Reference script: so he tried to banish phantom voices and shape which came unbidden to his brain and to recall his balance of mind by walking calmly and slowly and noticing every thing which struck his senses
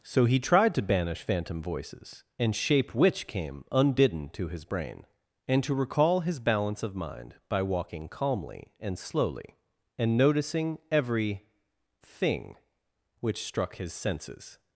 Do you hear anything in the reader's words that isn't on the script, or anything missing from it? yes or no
no